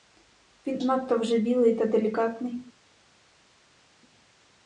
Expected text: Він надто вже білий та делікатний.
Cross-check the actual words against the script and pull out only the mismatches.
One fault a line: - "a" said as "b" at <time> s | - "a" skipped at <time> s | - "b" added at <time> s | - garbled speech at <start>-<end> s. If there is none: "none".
none